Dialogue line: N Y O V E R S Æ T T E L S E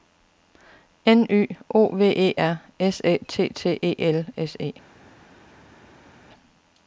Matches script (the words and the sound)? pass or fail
pass